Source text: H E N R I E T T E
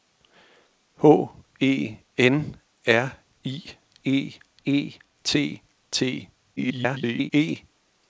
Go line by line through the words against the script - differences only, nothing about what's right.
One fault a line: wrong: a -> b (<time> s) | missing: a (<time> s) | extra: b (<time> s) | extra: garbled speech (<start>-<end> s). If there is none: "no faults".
extra: E (4.6 s)
extra: garbled speech (6.6-7.3 s)